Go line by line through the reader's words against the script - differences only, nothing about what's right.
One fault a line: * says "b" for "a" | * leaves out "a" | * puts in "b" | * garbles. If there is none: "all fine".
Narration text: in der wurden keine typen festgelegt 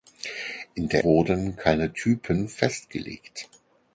all fine